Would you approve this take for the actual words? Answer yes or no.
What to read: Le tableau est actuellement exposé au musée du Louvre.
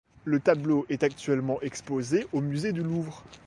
yes